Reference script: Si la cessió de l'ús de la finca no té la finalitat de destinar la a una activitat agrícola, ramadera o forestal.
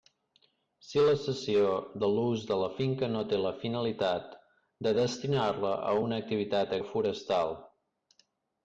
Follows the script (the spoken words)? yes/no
no